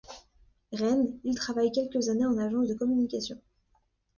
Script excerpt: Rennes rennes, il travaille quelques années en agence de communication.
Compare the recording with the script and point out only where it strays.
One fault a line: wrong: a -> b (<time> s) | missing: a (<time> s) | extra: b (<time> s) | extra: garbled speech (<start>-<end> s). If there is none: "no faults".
missing: rennes (1.2 s)